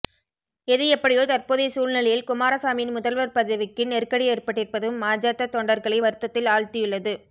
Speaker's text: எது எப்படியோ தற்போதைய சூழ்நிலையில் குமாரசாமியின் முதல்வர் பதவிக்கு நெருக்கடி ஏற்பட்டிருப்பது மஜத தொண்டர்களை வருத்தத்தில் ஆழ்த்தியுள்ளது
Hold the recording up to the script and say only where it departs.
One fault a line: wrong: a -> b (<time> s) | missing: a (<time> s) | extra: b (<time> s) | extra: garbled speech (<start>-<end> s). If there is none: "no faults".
no faults